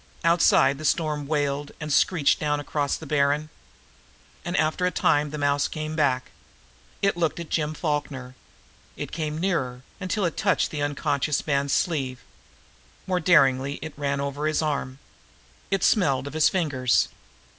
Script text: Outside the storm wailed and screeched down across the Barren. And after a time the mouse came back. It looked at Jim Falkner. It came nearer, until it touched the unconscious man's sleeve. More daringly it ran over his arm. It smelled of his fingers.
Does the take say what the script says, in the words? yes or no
yes